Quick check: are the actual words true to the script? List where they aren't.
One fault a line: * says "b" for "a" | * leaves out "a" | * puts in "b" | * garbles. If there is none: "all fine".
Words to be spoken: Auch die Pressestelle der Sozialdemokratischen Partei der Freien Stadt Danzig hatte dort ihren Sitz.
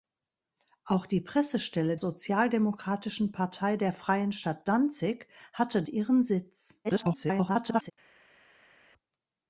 * leaves out "der"
* leaves out "dort"
* garbles